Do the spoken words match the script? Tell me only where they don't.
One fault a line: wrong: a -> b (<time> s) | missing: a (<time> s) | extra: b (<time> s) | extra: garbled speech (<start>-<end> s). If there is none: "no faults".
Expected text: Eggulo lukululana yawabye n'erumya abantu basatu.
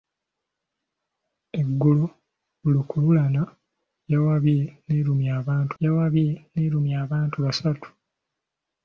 extra: yawabye n'erumya abantu (5.8 s)